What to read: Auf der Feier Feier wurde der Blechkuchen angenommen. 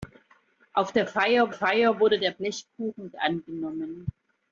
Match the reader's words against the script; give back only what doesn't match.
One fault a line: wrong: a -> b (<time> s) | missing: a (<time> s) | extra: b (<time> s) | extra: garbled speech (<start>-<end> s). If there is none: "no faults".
no faults